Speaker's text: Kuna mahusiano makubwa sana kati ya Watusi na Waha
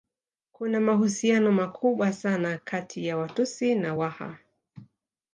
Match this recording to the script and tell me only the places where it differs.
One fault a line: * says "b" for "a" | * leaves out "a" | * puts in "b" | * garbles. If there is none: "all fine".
all fine